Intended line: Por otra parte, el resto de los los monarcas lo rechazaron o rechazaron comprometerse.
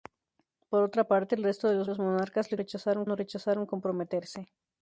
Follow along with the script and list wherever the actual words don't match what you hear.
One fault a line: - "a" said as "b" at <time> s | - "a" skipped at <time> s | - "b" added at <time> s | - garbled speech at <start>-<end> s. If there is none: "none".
none